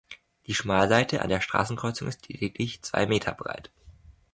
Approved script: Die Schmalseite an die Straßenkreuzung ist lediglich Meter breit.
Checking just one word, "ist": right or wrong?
right